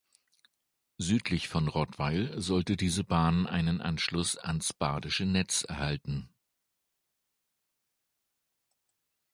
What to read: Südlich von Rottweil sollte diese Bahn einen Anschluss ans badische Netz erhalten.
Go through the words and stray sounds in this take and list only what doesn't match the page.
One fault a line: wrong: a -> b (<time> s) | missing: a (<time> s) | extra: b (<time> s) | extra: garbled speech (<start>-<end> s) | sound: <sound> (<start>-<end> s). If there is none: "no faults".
no faults